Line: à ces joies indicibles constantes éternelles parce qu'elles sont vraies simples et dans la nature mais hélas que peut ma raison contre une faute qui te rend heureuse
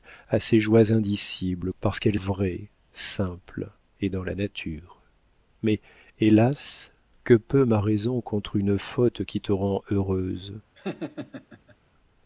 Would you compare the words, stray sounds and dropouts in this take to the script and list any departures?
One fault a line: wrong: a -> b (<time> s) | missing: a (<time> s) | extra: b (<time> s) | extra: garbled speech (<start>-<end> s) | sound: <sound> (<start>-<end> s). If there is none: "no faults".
missing: constantes éternelles (1.7 s)
missing: sont (2.2 s)
sound: laugh (10.7-11.8 s)